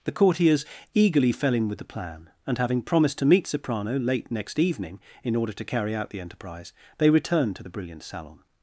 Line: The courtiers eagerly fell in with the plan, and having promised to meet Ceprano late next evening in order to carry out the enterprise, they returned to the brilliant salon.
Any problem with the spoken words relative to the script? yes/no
no